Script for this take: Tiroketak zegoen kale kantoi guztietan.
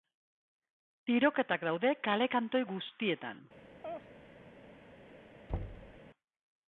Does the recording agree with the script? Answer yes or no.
no